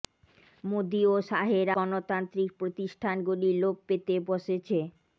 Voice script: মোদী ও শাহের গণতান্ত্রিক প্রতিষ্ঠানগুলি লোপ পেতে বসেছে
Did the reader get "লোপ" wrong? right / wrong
right